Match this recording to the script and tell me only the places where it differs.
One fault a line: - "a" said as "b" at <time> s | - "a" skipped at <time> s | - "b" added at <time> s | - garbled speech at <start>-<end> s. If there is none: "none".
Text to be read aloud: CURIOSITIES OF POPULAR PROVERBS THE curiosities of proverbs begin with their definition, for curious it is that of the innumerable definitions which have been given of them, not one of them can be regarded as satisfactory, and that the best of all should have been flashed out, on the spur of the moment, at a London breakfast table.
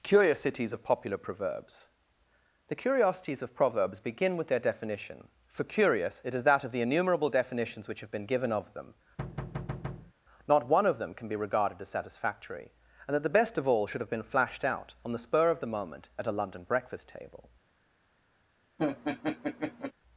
none